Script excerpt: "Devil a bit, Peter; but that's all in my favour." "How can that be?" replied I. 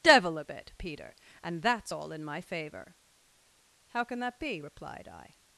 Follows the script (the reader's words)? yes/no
no